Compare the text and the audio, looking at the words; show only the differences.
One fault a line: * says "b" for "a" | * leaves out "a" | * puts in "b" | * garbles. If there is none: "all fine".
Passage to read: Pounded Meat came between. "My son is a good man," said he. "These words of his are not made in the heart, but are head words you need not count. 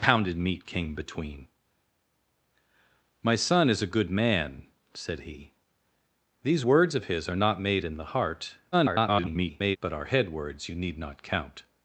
* garbles